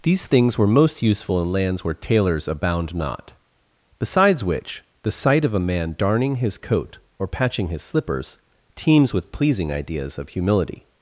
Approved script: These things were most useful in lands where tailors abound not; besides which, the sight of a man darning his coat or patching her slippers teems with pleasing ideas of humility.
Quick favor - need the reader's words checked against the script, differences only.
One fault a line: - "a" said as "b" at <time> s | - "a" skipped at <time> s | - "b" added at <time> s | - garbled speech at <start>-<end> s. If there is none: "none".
- "her" said as "his" at 7.7 s